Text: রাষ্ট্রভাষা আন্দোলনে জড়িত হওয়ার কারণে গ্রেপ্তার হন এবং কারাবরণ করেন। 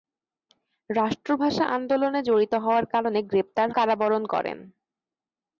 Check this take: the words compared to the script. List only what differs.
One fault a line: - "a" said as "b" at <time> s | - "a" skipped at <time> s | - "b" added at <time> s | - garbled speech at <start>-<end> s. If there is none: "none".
- "হন এবং" skipped at 3.7 s